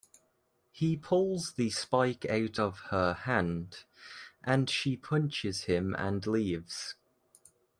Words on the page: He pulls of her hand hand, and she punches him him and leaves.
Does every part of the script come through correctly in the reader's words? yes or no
no